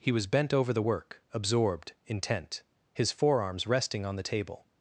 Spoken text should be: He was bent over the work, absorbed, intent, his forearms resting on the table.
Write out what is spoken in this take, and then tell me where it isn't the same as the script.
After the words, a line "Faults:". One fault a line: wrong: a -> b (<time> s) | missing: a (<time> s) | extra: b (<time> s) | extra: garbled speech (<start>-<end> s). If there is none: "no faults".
He was bent over the work, absorbed, intent, his forearms resting on the table.
Faults:
no faults